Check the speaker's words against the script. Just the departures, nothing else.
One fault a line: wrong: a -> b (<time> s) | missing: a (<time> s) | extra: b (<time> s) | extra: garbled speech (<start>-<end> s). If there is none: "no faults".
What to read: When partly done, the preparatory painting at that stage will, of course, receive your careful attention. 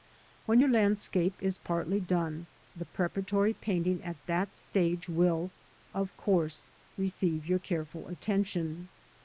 extra: your landscape is (0.6 s)